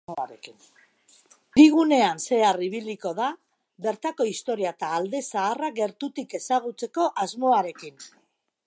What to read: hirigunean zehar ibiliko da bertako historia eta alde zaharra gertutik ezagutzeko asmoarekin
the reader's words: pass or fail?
pass